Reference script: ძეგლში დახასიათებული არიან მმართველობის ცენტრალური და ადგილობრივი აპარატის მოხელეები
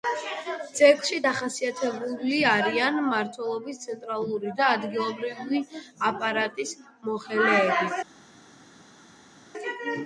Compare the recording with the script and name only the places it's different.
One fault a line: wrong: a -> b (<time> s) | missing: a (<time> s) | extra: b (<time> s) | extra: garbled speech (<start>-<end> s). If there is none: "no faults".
no faults